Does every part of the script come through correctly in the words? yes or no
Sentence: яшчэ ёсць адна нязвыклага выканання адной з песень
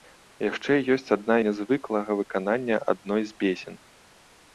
yes